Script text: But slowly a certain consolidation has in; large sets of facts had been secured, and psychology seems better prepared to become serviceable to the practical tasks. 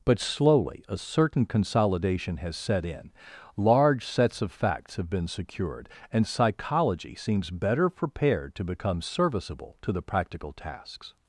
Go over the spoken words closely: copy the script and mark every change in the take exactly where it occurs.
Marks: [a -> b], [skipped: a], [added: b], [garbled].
But slowly a certain consolidation has [added: set] in; large sets of facts [had -> have] been secured, and psychology seems better prepared to become serviceable to the practical tasks.